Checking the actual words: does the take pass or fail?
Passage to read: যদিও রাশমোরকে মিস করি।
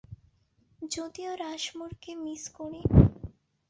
pass